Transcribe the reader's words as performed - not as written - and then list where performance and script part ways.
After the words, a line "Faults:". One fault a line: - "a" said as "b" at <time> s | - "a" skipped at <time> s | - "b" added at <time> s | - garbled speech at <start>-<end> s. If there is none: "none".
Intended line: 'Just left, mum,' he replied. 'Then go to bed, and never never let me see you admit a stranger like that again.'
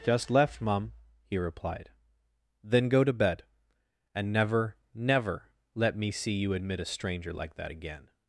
'Just left, mum,' he replied. 'Then go to bed, and never never let me see you admit a stranger like that again.'
Faults:
none